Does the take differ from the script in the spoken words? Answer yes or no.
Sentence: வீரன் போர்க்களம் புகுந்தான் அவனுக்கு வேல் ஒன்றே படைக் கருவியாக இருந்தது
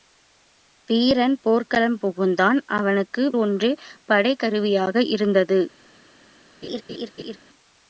yes